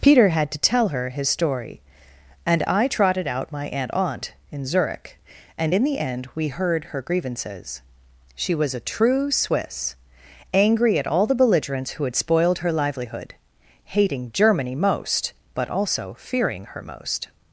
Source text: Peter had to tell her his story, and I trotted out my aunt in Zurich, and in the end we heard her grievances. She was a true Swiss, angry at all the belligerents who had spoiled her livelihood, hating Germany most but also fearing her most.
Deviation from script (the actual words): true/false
true